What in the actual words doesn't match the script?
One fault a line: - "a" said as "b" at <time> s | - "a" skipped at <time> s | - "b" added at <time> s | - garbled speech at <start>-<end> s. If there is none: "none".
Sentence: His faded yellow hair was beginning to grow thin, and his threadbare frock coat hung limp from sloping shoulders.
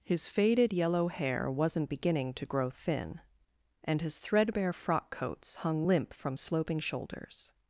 - "was" said as "wasn't" at 1.5 s
- "coat" said as "coats" at 5.1 s